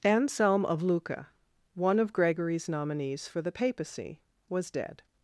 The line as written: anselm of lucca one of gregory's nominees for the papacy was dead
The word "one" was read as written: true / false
true